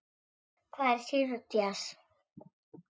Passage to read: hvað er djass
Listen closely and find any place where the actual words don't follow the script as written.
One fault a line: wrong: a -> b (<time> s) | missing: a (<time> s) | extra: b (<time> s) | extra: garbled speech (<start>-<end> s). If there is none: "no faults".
extra: sýru (1.1 s)